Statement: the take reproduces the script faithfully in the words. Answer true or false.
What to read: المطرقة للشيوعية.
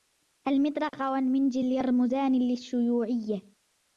false